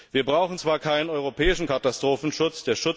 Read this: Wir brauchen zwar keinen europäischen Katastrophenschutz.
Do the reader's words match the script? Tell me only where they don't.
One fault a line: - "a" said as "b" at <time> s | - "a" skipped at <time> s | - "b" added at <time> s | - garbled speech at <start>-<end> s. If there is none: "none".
none